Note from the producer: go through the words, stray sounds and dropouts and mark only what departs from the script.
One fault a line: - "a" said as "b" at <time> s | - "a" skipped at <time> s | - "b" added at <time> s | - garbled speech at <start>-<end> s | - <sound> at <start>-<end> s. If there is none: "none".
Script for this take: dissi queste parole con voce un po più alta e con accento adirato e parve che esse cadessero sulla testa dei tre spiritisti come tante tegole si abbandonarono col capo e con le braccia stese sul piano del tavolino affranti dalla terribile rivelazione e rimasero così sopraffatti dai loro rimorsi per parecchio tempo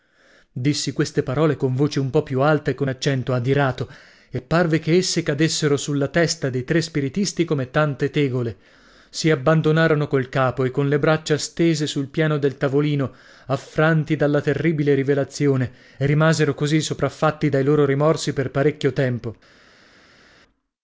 none